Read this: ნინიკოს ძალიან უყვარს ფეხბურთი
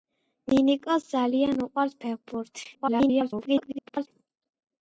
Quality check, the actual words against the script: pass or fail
fail